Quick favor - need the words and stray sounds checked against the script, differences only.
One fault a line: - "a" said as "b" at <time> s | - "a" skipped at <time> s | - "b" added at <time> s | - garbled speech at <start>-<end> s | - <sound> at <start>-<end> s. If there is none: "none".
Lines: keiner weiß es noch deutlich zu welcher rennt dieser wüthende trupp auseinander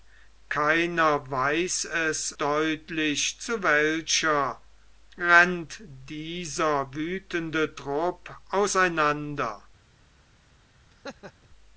- "noch" skipped at 2.4 s
- laugh at 10.9-11.5 s